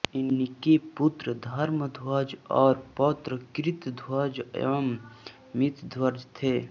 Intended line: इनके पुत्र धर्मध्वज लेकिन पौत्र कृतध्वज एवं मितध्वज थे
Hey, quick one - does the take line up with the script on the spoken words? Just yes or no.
no